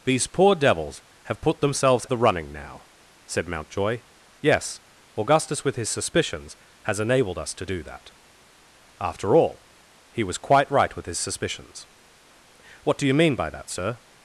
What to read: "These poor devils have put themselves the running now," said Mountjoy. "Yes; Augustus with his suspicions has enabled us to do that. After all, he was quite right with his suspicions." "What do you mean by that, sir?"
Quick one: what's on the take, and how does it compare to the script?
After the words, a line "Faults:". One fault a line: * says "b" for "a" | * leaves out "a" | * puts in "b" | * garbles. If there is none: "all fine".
"These poor devils have put themselves the running now," said Mountjoy. "Yes; Augustus with his suspicions has enabled us to do that. After all, he was quite right with his suspicions." "What do you mean by that, sir?"
Faults:
all fine